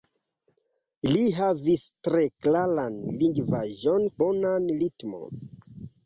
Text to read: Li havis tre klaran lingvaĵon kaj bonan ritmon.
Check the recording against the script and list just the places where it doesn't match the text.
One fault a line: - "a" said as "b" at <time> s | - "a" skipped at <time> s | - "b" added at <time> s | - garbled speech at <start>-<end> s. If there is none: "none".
- "kaj" skipped at 4.1 s